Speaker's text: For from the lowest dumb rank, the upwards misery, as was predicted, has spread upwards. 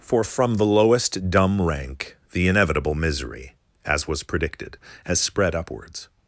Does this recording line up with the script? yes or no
no